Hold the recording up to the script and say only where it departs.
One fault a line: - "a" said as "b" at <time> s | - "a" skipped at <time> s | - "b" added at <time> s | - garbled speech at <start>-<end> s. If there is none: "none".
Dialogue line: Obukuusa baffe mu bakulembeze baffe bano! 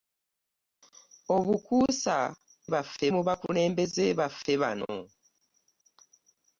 none